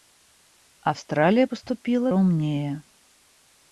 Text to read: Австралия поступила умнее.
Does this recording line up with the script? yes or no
yes